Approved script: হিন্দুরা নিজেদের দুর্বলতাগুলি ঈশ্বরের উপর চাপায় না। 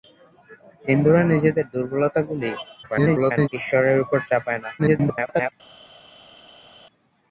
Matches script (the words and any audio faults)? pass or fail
fail